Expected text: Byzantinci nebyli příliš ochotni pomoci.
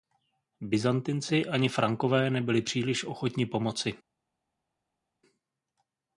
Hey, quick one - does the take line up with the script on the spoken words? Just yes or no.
no